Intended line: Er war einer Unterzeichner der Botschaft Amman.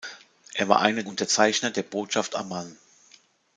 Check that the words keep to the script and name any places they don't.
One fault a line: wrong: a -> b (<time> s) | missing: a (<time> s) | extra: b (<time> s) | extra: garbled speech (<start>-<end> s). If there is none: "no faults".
no faults